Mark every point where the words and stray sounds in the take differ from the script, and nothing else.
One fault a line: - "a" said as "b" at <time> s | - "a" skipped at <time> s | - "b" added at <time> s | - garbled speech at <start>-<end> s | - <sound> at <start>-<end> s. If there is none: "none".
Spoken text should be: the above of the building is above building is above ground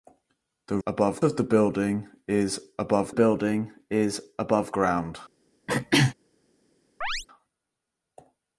- throat clearing at 5.7-6.1 s
- chirp at 7.0-7.3 s